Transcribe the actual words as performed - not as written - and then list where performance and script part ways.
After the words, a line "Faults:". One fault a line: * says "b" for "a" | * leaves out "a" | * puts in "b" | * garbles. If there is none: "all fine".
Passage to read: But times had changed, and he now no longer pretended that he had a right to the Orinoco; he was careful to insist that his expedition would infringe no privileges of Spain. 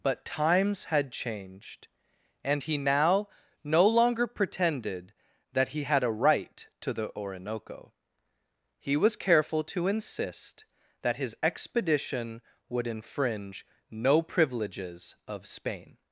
But times had changed, and he now no longer pretended that he had a right to the Orinoco; he was careful to insist that his expedition would infringe no privileges of Spain.
Faults:
all fine